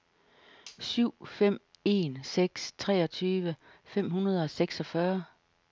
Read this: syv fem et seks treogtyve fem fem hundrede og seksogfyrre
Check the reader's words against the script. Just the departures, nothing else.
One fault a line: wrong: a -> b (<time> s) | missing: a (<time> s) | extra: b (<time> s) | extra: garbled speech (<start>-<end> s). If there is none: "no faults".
wrong: et -> en (1.8 s)
missing: fem (4.1 s)